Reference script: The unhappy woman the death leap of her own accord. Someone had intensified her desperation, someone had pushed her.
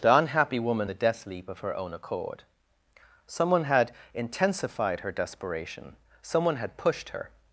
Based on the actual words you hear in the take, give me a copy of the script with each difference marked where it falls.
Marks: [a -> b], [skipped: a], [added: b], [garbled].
The unhappy woman the death leap of her own accord. Someone had intensified her desperation, someone had pushed her.